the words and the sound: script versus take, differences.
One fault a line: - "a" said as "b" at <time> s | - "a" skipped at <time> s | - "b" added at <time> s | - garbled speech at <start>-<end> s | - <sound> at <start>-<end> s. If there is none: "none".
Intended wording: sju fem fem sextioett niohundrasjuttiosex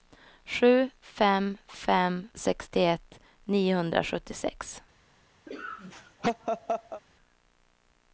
- laugh at 5.5-7.0 s